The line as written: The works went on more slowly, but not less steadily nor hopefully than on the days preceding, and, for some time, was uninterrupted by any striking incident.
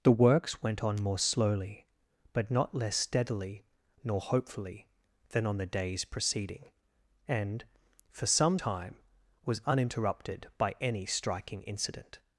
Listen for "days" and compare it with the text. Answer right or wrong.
right